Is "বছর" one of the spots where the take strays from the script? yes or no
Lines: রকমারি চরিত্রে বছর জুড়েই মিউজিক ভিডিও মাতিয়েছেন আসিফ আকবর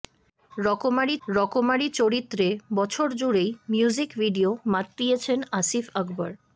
no